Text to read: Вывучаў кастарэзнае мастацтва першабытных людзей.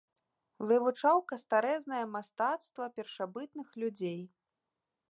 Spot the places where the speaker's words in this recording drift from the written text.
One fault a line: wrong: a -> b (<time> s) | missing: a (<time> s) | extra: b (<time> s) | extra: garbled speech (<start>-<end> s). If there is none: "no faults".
no faults